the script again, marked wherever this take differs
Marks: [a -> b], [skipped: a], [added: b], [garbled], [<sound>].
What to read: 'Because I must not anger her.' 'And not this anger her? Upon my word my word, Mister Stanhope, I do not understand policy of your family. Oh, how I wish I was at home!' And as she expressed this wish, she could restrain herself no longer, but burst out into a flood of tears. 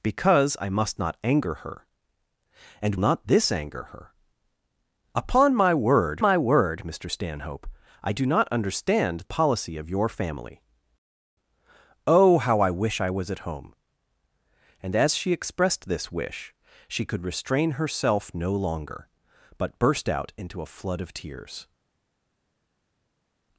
'Because I must not anger her.' 'And not this anger her? Upon my word my word, Mister Stanhope, I do not understand policy of your family. Oh, how I wish I was at home!' And as she expressed this wish, she could restrain herself no longer, but burst out into a flood of tears.